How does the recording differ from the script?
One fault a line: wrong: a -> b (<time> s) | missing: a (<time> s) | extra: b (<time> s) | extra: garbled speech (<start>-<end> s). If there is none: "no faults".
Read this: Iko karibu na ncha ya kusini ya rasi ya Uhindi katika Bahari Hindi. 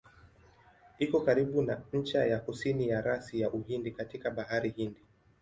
no faults